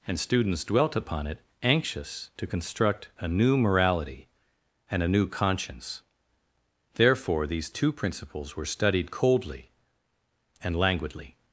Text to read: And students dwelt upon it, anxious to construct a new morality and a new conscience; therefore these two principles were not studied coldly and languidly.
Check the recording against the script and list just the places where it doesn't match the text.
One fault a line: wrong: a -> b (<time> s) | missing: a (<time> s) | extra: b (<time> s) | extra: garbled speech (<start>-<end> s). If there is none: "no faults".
missing: not (8.6 s)